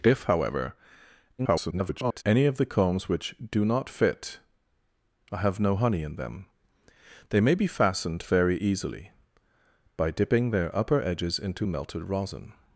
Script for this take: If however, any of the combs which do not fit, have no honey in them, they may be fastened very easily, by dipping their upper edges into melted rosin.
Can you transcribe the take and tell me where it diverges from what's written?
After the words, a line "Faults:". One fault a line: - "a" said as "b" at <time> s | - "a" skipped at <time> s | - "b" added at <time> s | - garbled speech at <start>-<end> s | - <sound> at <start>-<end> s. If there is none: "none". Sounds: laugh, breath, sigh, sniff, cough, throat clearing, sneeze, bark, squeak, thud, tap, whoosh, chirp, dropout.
If however, [garbled] any of the combs which do not fit, have no honey in them, they may be fastened very easily, by dipping their upper edges into melted rosin.
Faults:
- garbled speech at 1.4-2.2 s